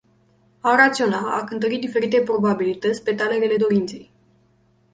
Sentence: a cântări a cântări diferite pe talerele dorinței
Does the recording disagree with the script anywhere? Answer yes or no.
yes